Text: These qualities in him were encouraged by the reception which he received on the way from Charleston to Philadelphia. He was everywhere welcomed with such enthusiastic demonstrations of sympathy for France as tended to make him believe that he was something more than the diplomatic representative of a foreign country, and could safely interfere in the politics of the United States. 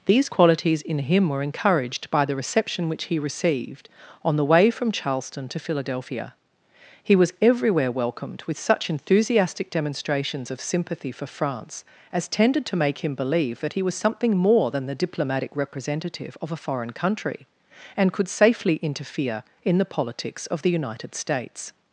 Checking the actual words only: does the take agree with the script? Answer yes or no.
yes